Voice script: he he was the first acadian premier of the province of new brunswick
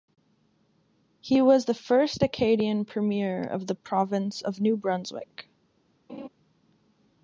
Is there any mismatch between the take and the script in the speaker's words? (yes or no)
yes